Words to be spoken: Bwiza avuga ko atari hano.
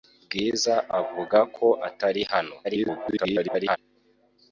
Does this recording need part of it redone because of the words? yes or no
yes